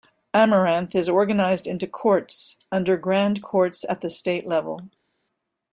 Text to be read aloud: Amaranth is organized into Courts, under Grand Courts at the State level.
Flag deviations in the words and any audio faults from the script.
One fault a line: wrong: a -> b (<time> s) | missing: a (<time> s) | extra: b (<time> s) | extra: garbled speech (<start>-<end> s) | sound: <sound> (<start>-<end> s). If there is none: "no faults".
no faults